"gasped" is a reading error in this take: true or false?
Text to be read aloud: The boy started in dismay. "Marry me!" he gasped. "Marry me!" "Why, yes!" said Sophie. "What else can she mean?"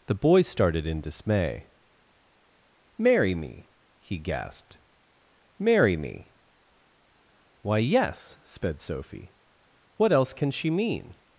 false